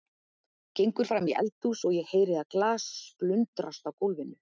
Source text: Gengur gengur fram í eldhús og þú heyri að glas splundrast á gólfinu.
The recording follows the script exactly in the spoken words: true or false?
false